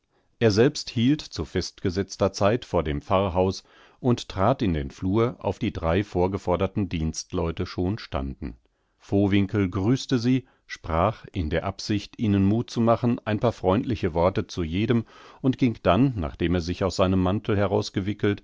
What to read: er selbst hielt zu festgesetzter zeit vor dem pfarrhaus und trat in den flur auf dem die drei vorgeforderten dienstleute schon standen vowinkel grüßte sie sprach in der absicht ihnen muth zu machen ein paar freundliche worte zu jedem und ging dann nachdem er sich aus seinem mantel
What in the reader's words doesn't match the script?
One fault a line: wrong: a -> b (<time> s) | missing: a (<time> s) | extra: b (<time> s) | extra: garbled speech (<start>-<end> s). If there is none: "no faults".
missing: dem (5.6 s)